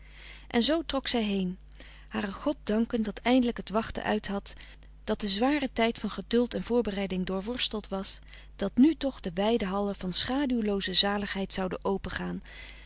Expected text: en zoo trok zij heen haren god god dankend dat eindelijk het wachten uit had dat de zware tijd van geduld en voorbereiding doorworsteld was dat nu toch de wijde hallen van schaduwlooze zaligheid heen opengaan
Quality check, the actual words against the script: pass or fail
fail